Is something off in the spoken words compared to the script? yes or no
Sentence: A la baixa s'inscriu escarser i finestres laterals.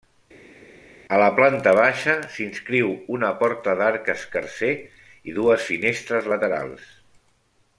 yes